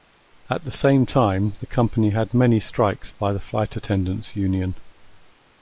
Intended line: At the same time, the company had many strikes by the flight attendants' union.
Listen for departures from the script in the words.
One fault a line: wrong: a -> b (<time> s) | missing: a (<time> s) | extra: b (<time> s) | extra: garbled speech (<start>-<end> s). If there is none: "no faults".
no faults